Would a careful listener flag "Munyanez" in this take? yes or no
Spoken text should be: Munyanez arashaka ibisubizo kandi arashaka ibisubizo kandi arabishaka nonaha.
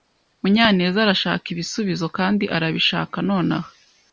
no